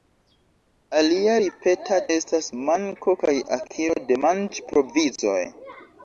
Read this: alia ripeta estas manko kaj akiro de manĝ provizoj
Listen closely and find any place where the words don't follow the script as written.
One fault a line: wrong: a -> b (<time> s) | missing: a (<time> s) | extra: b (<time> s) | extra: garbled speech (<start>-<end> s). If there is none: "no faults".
no faults